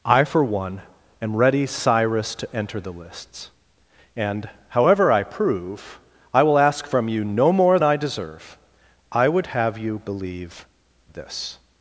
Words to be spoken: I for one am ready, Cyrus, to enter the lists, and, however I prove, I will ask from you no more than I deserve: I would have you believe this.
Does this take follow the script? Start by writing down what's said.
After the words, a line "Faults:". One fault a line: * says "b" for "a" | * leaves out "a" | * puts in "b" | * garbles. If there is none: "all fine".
I for one am ready, Cyrus, to enter the lists, and, however I prove, I will ask from you no more I deserve: I would have you believe this.
Faults:
* leaves out "than"